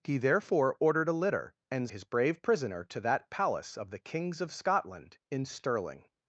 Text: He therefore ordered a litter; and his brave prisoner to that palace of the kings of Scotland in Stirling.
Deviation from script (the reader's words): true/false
false